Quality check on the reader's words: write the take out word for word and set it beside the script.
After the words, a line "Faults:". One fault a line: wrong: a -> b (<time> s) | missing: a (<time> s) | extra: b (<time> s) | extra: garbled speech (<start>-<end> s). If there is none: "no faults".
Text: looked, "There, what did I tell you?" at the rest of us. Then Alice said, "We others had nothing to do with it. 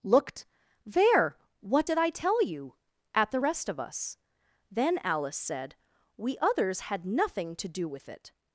looked, "There, what did I tell you?" at the rest of us. Then Alice said, "We others had nothing to do with it.
Faults:
no faults